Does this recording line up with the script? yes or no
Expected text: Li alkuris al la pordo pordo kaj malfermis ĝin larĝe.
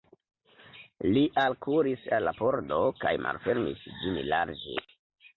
no